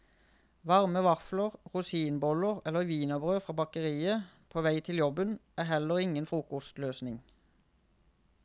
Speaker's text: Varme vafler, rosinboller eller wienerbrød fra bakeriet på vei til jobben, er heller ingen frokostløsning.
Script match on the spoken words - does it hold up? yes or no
yes